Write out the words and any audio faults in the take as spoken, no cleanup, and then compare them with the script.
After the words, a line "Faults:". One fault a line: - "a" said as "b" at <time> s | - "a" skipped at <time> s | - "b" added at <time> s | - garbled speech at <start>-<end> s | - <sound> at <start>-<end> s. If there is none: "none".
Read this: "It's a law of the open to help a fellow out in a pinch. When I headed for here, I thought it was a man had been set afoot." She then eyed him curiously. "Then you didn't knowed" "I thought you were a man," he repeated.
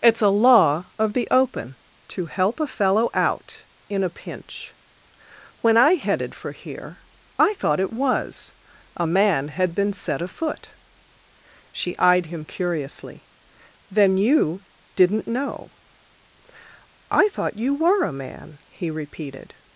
"It's a law of the open to help a fellow out in a pinch. When I headed for here, I thought it was a man had been set afoot." She eyed him curiously. "Then you didn't know" "I thought you were a man," he repeated.
Faults:
- "then" skipped at 12.0 s
- "knowed" said as "know" at 15.3 s